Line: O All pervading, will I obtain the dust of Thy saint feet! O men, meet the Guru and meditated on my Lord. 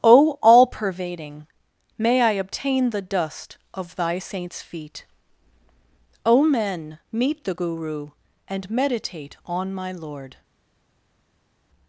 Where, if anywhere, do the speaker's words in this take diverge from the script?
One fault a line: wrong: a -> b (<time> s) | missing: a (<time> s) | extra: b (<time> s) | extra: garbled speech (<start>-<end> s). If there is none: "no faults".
wrong: will -> may (1.9 s)
wrong: saint -> saints (4.2 s)
wrong: meditated -> meditate (8.7 s)